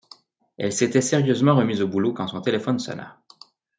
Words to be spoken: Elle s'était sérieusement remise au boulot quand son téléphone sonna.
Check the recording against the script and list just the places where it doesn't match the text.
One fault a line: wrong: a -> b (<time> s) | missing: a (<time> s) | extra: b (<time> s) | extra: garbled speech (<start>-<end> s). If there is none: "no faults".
no faults